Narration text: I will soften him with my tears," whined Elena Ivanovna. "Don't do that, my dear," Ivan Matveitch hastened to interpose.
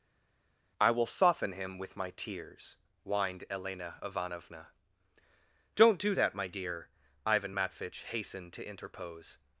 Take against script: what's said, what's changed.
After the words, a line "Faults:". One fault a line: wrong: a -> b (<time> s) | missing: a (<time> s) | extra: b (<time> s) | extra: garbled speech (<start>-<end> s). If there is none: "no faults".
I will soften him with my tears," whined Elena Ivanovna. "Don't do that, my dear," Ivan Matveitch hastened to interpose.
Faults:
no faults